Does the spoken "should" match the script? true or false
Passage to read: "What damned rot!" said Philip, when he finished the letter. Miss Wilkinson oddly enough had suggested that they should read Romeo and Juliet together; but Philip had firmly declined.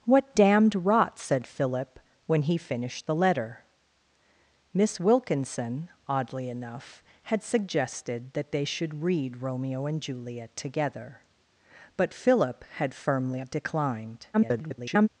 true